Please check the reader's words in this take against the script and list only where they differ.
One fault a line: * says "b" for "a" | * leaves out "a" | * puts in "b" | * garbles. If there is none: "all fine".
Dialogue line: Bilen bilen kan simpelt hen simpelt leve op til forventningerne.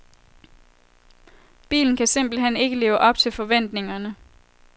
* leaves out "bilen"
* says "ikke" for "simpelt"